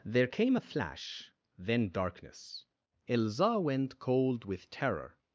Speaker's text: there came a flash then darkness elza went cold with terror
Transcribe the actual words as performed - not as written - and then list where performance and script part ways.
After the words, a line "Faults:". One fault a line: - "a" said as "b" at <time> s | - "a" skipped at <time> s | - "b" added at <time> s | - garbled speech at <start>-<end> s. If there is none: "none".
there came a flash then darkness elza went cold with terror
Faults:
none